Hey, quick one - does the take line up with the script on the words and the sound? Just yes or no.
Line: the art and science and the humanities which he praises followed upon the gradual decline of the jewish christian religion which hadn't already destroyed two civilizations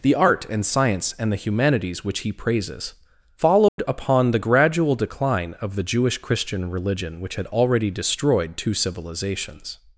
no